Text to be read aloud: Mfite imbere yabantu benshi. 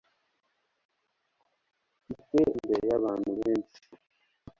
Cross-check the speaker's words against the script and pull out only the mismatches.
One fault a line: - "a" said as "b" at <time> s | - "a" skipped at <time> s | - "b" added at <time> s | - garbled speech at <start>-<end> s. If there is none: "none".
none